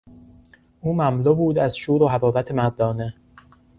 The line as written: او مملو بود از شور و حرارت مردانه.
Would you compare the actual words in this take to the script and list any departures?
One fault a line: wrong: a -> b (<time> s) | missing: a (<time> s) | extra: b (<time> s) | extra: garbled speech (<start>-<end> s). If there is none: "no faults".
no faults